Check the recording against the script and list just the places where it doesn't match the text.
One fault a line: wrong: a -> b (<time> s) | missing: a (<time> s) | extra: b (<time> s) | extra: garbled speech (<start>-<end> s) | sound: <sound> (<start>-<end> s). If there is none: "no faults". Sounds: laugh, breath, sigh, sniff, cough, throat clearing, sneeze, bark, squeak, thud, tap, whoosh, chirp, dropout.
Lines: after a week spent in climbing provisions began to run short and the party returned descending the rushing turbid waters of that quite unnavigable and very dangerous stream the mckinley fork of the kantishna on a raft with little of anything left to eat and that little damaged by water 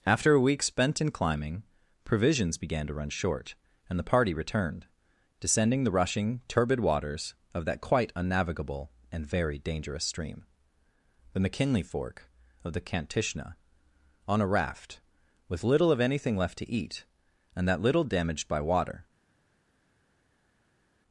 no faults